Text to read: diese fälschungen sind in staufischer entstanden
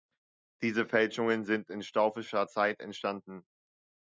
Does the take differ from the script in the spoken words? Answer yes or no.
yes